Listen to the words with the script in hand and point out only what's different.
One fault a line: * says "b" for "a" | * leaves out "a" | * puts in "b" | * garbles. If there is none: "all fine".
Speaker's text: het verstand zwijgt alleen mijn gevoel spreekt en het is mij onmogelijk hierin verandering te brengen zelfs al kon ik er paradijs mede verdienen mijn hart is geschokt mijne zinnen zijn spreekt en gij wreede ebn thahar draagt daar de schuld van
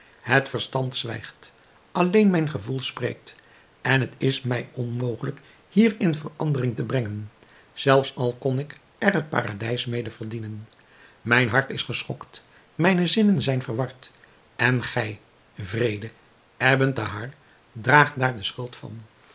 * puts in "het"
* says "verward" for "spreekt"